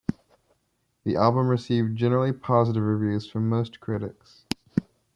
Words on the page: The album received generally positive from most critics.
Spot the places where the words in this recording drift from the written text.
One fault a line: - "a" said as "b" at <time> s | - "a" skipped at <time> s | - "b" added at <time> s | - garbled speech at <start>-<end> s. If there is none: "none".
- "reviews" added at 2.8 s